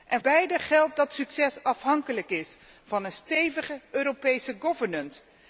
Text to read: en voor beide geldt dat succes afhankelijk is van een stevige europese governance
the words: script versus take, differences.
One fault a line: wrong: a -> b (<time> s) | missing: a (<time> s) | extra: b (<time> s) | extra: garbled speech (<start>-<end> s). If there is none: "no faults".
missing: voor (0.2 s)